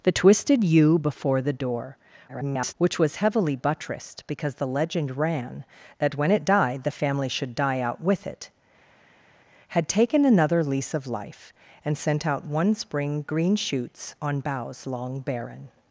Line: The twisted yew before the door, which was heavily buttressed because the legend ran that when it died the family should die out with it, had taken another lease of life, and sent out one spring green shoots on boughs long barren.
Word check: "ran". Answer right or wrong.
right